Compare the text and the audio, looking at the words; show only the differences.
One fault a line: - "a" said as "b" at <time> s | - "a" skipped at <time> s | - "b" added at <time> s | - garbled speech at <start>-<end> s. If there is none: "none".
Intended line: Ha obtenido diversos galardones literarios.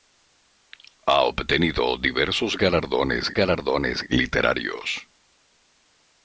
- "galardones" added at 3.3 s